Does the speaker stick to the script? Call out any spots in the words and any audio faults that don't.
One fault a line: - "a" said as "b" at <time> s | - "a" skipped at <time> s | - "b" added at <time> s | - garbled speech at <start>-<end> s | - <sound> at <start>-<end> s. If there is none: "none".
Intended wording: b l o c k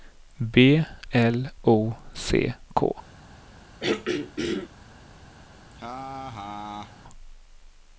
- throat clearing at 3.8-4.7 s
- laugh at 5.7-7.0 s